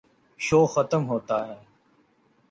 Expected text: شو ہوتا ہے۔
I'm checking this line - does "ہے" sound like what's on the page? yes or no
yes